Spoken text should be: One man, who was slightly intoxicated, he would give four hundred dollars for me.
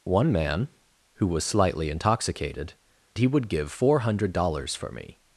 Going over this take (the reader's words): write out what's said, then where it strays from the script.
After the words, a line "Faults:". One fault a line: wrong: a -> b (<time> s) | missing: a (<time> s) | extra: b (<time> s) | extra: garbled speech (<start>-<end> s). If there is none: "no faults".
One man, who was slightly intoxicated, he would give four hundred dollars for me.
Faults:
no faults